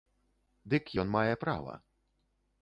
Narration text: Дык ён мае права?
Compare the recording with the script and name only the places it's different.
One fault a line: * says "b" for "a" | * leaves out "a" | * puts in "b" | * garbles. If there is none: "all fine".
all fine